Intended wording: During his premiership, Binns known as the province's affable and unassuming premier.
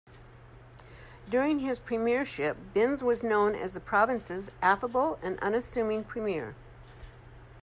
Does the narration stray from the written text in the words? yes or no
yes